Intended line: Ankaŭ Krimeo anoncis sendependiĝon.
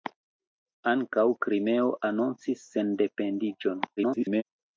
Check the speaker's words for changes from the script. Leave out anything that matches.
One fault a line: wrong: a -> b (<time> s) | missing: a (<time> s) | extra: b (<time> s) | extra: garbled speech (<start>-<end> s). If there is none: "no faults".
extra: garbled speech (4.0-4.4 s)